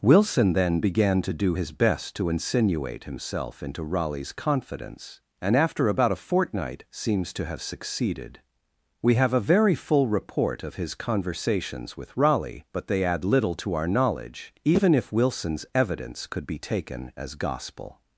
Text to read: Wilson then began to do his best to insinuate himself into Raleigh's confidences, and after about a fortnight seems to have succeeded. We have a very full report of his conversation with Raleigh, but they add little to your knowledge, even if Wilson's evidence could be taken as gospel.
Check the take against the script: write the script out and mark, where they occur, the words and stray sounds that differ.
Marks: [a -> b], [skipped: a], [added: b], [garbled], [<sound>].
Wilson then began to do his best to insinuate himself into Raleigh's [confidences, -> confidence] and after about a fortnight seems to have succeeded. We have a very full report of his [conversation -> conversations] with Raleigh, but they add little to [your -> our] knowledge, even if Wilson's evidence could be taken as gospel.